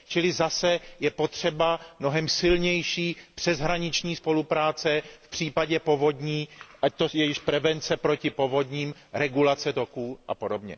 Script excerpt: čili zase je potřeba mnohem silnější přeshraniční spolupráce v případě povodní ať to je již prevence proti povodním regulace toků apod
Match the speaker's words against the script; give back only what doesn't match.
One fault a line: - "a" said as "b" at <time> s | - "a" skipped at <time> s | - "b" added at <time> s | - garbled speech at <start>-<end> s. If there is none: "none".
none